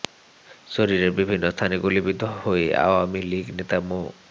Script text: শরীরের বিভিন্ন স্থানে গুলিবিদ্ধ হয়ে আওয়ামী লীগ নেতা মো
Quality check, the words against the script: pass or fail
pass